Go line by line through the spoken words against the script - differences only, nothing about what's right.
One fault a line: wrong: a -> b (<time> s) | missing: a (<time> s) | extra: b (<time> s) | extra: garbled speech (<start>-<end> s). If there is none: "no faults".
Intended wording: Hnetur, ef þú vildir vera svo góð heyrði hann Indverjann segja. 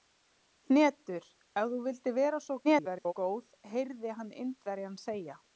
extra: garbled speech (2.6-3.1 s)